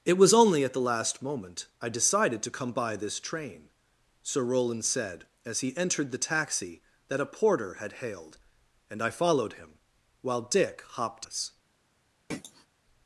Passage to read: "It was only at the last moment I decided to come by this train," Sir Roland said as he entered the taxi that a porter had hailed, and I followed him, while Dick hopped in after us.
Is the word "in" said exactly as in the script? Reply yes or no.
no